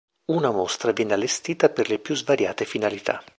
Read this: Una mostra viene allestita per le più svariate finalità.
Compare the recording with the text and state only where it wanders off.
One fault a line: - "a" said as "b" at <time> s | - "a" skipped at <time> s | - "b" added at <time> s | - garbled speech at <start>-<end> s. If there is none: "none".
none